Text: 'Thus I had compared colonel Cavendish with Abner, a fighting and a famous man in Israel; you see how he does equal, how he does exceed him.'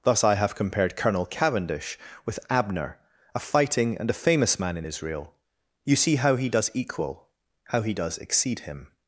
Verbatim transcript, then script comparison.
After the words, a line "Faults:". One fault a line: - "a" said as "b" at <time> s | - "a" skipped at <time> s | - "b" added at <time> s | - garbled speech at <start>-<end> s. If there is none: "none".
'Thus I have compared colonel Cavendish with Abner, a fighting and a famous man in Israel; you see how he does equal, how he does exceed him.'
Faults:
- "had" said as "have" at 0.3 s